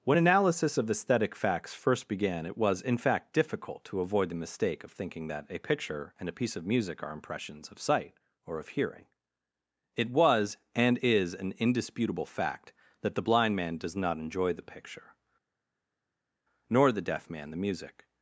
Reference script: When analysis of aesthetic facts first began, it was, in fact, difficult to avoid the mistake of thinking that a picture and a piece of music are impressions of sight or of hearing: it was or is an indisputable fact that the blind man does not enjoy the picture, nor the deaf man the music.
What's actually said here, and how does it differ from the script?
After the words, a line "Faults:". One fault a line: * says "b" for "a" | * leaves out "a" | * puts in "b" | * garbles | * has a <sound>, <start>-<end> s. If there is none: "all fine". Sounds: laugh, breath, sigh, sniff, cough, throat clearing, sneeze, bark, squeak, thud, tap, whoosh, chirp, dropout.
When analysis of aesthetic facts first began, it was, in fact, difficult to avoid the mistake of thinking that a picture and a piece of music are impressions of sight or of hearing: it was and is an indisputable fact that the blind man does not enjoy the picture, nor the deaf man the music.
Faults:
* says "and" for "or"